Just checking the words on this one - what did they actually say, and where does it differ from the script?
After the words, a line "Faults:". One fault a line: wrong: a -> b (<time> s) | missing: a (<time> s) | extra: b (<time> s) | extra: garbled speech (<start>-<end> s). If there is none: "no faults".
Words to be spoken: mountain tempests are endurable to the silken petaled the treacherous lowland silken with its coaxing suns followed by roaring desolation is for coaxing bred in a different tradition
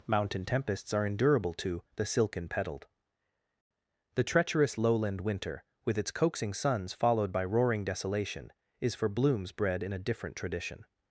mountain tempests are endurable to the silken petaled the treacherous lowland winter with its coaxing suns followed by roaring desolation is for blooms bred in a different tradition
Faults:
wrong: silken -> winter (5.2 s)
wrong: coaxing -> blooms (9.1 s)